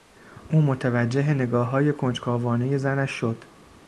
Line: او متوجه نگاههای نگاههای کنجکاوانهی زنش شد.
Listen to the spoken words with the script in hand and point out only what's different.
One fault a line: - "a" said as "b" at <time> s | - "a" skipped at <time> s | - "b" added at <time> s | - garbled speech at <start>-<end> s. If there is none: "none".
- "نگاههای" skipped at 1.9 s